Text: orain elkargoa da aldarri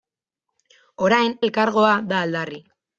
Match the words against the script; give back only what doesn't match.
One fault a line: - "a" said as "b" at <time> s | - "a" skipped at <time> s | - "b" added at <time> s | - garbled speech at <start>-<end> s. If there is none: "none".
none